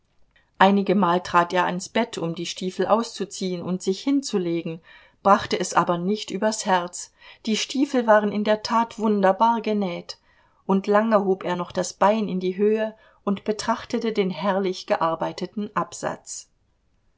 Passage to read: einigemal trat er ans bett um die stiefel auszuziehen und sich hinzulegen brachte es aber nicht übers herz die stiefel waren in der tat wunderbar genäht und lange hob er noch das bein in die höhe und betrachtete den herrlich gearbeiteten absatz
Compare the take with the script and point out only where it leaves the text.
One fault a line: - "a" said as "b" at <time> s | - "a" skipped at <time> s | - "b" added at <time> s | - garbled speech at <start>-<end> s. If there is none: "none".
none